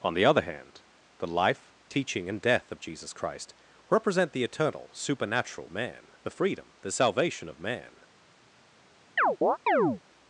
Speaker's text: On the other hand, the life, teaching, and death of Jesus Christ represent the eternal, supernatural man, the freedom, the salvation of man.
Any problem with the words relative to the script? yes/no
no